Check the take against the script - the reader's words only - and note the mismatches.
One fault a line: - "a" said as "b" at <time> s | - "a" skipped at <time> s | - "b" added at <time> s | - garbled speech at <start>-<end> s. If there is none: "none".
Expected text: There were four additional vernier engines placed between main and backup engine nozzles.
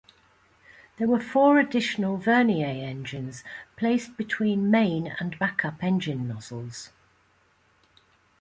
none